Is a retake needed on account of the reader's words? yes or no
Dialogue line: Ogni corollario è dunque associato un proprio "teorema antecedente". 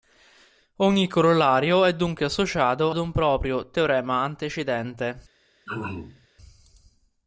no